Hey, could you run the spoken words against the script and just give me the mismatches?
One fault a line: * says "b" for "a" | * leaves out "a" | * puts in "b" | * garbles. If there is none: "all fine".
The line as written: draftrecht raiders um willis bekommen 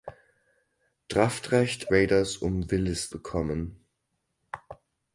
all fine